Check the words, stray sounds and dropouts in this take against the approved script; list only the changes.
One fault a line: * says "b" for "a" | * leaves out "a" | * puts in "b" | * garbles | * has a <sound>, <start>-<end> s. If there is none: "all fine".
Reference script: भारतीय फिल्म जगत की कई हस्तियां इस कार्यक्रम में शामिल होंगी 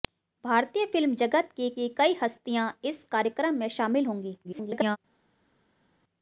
* puts in "की"
* garbles